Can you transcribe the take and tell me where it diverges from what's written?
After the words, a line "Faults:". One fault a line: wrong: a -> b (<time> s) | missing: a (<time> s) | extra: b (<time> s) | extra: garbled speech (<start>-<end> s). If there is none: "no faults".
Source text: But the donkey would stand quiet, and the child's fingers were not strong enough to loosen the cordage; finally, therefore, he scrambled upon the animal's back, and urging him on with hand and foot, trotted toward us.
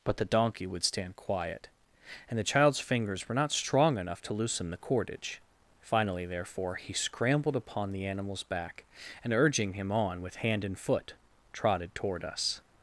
But the donkey would stand quiet, and the child's fingers were not strong enough to loosen the cordage; finally, therefore, he scrambled upon the animal's back, and urging him on with hand and foot, trotted toward us.
Faults:
no faults